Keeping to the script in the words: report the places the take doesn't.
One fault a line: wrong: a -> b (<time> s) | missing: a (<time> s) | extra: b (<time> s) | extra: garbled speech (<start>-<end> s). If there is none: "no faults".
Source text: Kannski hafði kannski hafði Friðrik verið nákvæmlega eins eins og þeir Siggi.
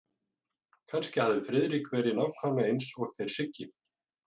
missing: kannski hafði (1.4 s)
missing: eins (2.9 s)